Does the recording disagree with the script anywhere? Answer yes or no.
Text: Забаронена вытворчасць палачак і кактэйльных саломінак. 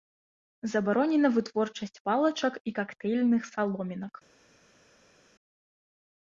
no